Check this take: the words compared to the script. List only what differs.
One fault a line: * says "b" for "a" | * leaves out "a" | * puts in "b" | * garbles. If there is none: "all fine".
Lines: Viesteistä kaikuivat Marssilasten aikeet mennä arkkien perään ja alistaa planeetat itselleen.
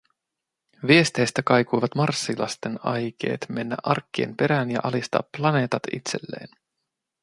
all fine